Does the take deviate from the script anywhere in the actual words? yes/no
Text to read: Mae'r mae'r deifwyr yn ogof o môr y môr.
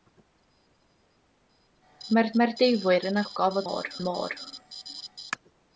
no